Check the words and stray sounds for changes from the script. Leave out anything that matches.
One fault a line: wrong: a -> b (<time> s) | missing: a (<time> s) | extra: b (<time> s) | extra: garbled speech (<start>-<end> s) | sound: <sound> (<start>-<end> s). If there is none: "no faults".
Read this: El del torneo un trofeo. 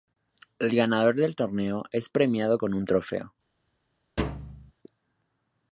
extra: ganador (0.8 s)
extra: es premiado con (1.9 s)
sound: thud (4.2-4.7 s)